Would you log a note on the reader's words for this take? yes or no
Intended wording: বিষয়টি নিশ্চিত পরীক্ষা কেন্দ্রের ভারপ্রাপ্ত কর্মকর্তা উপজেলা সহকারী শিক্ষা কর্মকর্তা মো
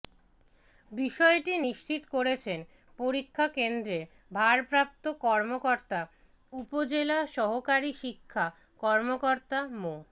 yes